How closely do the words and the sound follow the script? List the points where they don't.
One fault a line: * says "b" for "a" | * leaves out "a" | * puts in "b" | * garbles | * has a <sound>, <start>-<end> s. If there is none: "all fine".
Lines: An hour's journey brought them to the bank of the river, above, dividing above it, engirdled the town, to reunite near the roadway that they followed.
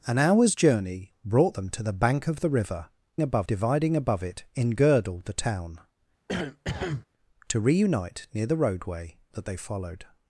* has a cough, 6.3-7.1 s